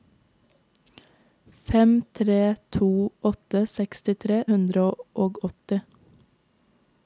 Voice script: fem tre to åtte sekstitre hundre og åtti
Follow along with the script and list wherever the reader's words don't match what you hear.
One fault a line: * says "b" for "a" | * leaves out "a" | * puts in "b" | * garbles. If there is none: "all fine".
all fine